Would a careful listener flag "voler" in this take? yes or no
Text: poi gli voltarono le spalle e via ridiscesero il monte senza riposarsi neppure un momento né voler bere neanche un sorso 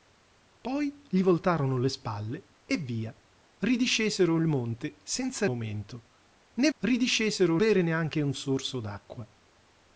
yes